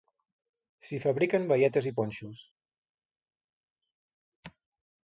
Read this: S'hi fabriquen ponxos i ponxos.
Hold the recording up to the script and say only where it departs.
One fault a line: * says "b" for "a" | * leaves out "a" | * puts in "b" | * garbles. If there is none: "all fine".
* says "baietes" for "ponxos"